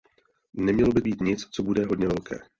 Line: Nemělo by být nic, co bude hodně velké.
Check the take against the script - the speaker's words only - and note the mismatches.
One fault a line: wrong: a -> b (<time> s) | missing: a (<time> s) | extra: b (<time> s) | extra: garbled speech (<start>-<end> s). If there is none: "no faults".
no faults